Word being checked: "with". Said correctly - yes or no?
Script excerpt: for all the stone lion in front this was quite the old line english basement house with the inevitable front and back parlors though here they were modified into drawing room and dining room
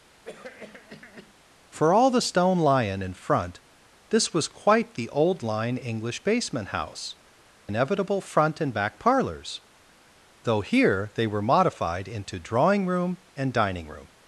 no